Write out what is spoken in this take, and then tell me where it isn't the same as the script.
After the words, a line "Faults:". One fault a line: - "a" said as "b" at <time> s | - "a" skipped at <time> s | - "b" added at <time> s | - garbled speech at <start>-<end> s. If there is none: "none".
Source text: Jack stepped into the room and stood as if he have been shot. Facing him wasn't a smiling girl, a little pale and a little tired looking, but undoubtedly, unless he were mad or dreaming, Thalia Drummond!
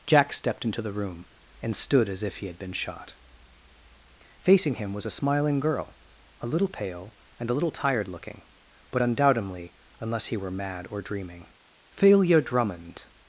Jack stepped into the room and stood as if he had been shot. Facing him was a smiling girl, a little pale and a little tired looking, but undoubtedly, unless he were mad or dreaming, Thalia Drummond!
Faults:
- "have" said as "had" at 2.5 s
- "wasn't" said as "was" at 4.9 s